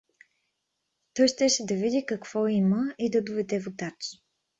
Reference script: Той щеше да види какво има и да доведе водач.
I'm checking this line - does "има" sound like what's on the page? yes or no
yes